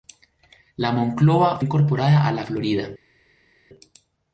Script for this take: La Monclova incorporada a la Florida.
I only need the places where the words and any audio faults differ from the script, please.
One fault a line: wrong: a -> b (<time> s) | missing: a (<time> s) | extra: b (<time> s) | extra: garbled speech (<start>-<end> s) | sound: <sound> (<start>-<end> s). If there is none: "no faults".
no faults